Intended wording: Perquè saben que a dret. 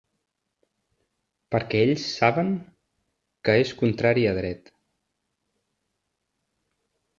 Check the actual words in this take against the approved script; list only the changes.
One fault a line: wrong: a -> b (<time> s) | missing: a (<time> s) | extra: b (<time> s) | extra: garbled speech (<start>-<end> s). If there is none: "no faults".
extra: ells (1.9 s)
extra: és contrari (3.6 s)